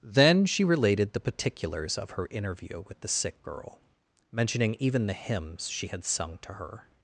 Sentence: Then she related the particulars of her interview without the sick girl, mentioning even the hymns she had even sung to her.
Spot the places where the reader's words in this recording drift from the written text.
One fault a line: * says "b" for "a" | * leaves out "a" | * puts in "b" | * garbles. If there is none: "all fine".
* says "with" for "without"
* leaves out "even"